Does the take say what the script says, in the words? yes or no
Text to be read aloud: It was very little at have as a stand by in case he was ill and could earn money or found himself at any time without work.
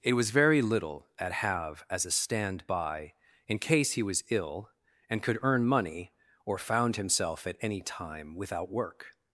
yes